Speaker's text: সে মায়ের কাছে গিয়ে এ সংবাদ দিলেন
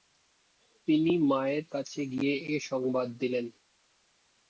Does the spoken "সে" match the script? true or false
false